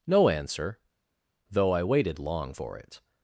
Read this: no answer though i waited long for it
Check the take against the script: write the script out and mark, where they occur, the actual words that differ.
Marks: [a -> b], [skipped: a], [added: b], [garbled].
no answer though i waited long for it